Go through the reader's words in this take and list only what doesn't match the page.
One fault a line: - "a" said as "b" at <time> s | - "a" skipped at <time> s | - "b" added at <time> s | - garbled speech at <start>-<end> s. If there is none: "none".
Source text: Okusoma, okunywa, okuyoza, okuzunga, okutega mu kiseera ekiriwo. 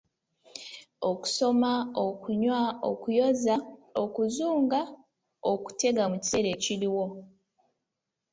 none